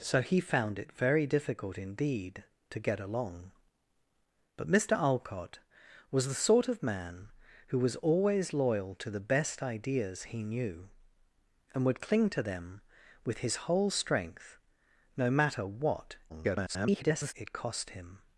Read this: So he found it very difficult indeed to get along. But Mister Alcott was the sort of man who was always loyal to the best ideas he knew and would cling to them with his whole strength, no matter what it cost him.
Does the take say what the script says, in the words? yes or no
no